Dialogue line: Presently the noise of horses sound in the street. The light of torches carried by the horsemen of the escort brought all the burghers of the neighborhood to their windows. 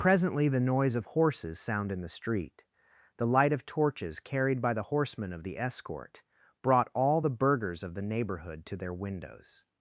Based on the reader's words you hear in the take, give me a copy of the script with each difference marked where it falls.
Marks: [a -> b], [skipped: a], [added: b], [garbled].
Presently the noise of horses sound in the street. The light of torches carried by the horsemen of the escort brought all the burghers of the neighborhood to their windows.